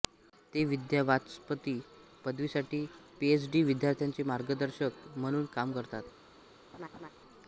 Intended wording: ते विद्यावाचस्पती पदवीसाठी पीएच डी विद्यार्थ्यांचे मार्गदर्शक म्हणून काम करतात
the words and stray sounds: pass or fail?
fail